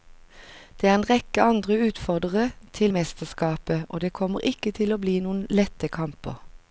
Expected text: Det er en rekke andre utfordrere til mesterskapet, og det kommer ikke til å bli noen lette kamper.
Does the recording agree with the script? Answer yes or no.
yes